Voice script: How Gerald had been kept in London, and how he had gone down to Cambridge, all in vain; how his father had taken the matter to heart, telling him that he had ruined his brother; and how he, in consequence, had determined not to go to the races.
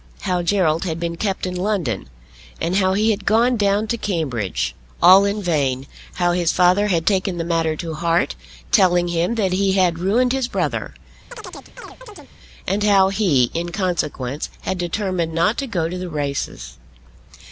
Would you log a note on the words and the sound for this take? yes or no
yes